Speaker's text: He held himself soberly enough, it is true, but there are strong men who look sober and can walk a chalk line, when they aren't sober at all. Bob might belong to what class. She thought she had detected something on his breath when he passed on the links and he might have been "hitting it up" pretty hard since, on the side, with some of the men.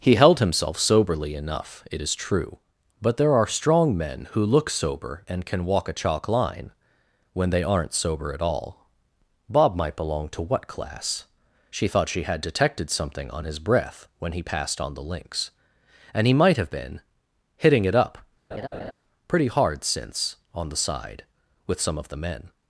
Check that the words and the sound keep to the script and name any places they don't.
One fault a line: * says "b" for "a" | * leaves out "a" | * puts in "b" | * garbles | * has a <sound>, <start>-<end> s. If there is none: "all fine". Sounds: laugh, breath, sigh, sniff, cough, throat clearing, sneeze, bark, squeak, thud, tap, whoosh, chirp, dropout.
* has a laugh, 18.5-18.9 s